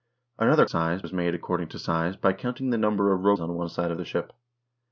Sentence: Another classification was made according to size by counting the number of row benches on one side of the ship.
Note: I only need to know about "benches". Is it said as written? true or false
false